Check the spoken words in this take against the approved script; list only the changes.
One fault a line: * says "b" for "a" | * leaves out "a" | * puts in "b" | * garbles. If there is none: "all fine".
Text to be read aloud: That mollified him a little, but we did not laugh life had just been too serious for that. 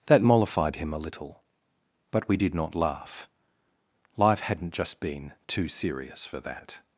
* says "hadn't" for "had"